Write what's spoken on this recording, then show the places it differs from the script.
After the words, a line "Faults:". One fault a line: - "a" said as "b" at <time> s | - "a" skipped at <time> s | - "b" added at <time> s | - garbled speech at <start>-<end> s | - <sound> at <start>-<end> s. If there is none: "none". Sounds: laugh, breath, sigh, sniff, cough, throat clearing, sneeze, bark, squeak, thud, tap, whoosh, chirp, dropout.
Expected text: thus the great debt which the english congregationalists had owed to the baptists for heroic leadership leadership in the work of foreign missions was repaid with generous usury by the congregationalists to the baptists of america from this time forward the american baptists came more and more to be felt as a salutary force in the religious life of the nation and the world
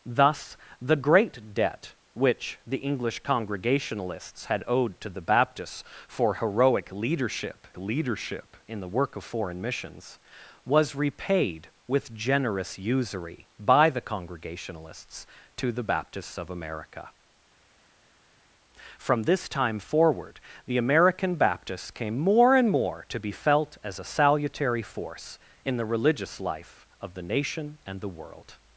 thus the great debt which the english congregationalists had owed to the baptists for heroic leadership leadership in the work of foreign missions was repaid with generous usury by the congregationalists to the baptists of america from this time forward the american baptists came more and more to be felt as a salutary force in the religious life of the nation and the world
Faults:
none